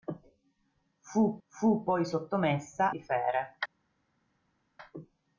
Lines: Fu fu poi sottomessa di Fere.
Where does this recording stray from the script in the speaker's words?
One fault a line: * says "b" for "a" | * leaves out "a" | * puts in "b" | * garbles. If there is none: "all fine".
all fine